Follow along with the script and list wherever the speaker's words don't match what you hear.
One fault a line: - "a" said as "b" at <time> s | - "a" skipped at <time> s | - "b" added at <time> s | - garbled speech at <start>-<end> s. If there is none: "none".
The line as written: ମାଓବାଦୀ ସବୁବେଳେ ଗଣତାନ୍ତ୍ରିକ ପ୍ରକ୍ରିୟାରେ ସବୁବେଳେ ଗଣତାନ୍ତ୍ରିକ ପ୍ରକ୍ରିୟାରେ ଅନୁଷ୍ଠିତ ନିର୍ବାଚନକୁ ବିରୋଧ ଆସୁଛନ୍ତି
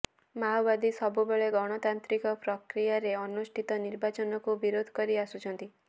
- "ସବୁବେଳେ ଗଣତାନ୍ତ୍ରିକ ପ୍ରକ୍ରିୟାରେ" skipped at 3.1 s
- "କରି" added at 5.0 s